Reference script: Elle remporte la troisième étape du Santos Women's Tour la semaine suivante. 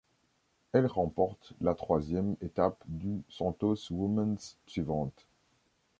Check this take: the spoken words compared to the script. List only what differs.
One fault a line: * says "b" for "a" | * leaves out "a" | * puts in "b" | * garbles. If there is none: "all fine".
* leaves out "Tour la semaine"